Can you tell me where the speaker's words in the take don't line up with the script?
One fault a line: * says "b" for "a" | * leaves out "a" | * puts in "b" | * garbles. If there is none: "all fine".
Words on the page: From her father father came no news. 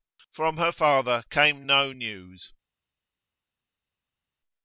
* leaves out "father"